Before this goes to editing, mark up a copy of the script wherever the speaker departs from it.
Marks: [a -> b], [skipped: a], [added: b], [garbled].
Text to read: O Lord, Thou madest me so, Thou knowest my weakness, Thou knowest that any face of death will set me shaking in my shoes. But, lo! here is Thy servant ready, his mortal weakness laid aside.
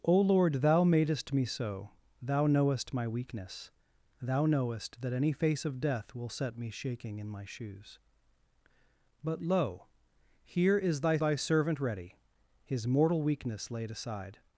O Lord, Thou madest me so, Thou knowest my weakness, Thou knowest that any face of death will set me shaking in my shoes. But, lo! here is Thy [added: Thy] servant ready, his mortal weakness laid aside.